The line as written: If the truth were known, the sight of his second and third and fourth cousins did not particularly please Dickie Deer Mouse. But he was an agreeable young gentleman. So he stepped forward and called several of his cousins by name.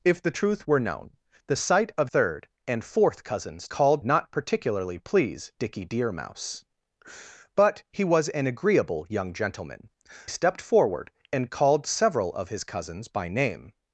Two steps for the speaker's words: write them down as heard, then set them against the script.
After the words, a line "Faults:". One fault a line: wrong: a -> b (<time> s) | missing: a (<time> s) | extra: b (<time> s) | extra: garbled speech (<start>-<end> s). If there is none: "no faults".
If the truth were known, the sight of third and fourth cousins called not particularly please Dickie Deer Mouse. But he was an agreeable young gentleman. Stepped forward and called several of his cousins by name.
Faults:
missing: his second and (2.1 s)
wrong: did -> called (3.7 s)
missing: So he (9.9 s)